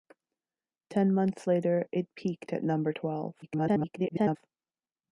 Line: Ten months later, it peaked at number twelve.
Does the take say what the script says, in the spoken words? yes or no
no